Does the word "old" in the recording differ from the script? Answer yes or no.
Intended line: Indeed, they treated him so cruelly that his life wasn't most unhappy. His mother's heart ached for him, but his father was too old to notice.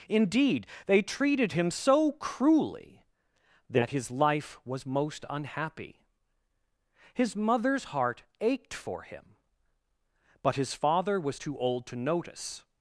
no